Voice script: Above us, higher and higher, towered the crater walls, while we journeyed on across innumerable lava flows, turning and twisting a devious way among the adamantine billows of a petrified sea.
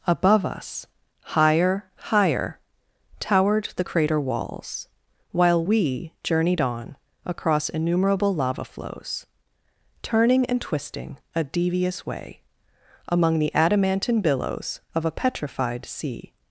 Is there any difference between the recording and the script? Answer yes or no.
yes